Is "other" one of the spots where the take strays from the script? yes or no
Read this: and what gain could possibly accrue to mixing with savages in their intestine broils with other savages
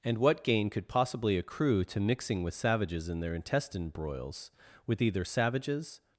yes